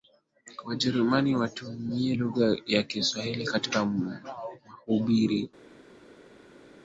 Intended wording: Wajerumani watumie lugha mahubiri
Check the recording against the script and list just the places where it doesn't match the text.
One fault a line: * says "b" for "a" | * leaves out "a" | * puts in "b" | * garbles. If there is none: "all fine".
* puts in "ya Kiswahili katika"